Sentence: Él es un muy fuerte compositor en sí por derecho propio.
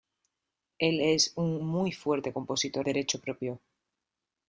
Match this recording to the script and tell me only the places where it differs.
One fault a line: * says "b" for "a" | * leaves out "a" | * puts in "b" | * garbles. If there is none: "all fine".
* leaves out "en sí por"